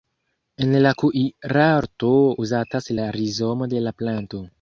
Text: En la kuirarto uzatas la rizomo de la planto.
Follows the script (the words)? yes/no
yes